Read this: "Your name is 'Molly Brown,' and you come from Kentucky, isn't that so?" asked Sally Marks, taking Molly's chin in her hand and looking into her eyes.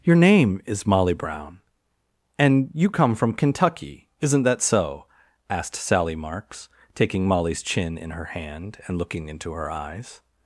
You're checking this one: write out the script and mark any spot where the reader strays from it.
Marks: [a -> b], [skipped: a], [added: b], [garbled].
"Your name is 'Molly Brown,' and you come from Kentucky, isn't that so?" asked Sally Marks, taking Molly's chin in her hand and looking into her eyes.